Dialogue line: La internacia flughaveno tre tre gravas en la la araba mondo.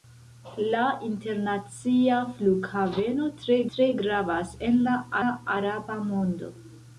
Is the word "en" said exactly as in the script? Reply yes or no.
yes